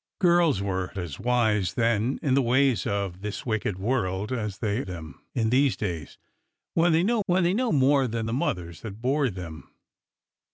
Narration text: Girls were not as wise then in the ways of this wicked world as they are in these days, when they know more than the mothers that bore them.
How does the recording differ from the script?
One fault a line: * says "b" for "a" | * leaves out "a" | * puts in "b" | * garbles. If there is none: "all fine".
* leaves out "not"
* says "them" for "are"
* puts in "when they know"